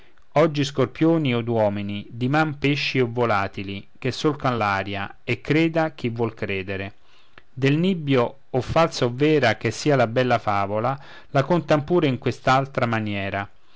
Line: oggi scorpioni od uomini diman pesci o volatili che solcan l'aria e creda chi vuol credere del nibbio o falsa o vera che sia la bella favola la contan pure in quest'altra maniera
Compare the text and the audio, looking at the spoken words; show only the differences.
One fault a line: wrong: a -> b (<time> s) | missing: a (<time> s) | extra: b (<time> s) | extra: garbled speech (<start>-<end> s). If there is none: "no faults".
no faults